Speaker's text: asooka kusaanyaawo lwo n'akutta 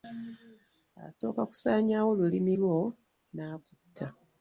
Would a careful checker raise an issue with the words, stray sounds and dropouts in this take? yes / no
yes